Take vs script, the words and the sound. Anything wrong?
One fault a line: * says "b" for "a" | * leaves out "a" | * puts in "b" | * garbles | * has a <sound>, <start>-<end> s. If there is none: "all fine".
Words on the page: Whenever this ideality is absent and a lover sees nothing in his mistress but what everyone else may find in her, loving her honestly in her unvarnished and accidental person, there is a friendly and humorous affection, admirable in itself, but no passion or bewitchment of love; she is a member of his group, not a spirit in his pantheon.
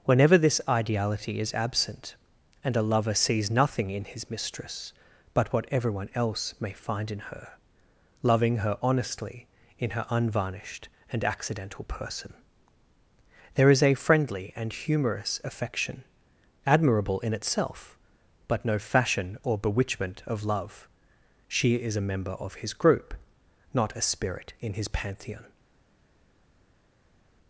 * says "fashion" for "passion"